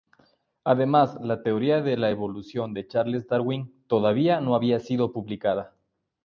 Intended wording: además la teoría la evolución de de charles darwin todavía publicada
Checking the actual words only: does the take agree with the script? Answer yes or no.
no